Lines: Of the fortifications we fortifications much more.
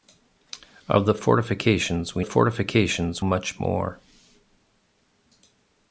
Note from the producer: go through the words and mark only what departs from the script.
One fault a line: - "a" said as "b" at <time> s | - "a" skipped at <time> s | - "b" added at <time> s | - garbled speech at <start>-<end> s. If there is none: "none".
none